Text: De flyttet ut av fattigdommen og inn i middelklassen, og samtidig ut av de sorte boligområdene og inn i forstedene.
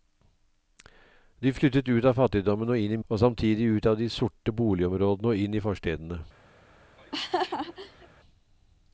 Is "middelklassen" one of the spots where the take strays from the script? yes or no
yes